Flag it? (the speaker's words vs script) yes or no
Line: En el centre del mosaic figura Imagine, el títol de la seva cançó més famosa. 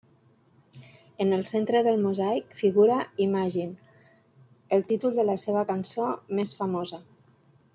no